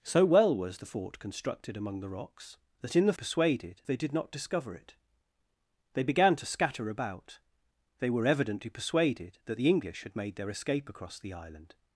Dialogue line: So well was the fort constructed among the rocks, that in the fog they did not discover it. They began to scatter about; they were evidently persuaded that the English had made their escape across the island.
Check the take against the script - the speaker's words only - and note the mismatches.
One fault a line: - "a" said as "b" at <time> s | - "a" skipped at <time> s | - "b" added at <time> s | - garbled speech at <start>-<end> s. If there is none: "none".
- "fog" said as "persuaded" at 3.1 s